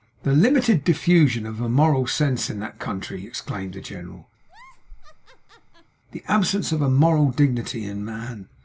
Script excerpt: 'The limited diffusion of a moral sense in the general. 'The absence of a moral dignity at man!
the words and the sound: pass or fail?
fail